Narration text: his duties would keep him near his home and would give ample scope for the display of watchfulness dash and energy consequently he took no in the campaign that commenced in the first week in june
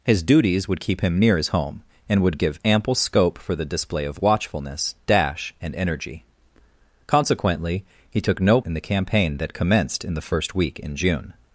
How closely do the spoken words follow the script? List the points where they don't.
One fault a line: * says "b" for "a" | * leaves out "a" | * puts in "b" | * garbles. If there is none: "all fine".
all fine